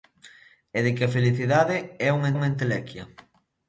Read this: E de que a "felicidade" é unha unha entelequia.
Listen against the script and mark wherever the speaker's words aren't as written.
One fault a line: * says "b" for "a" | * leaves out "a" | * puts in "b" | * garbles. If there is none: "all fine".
all fine